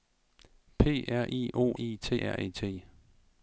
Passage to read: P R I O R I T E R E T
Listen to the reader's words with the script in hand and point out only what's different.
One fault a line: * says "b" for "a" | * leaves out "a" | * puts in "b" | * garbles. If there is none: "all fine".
* leaves out "R"
* leaves out "E"